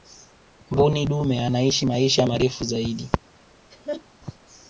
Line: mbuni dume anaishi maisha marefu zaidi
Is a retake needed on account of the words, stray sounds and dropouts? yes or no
yes